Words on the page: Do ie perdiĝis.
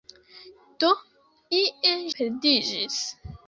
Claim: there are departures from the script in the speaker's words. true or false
false